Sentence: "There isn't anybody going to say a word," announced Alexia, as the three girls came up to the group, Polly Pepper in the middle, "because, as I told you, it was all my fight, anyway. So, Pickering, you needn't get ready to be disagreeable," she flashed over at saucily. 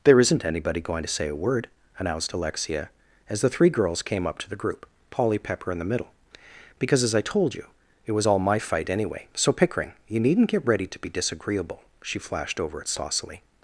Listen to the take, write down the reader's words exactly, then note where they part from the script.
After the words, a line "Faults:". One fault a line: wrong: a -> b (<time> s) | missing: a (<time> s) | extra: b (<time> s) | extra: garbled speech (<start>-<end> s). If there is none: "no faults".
"There isn't anybody going to say a word," announced Alexia, as the three girls came up to the group, Polly Pepper in the middle, "because, as I told you, it was all my fight, anyway. So, Pickering, you needn't get ready to be disagreeable," she flashed over at saucily.
Faults:
no faults